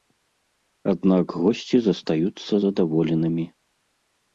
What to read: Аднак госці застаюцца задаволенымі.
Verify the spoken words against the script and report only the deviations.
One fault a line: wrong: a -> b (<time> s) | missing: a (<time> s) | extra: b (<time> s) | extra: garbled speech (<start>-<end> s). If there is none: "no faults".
no faults